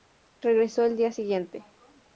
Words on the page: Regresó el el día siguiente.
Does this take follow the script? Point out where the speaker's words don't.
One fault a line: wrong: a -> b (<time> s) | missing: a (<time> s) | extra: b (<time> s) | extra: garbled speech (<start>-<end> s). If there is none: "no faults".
missing: el (1.0 s)